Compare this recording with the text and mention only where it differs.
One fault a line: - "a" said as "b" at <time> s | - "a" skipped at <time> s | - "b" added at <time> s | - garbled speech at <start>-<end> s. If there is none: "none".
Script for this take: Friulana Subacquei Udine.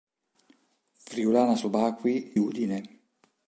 none